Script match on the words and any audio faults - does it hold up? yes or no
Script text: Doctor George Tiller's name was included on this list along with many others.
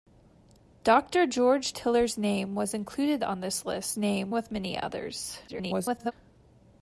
no